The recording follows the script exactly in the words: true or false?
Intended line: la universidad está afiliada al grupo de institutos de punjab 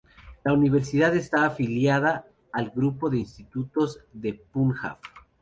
true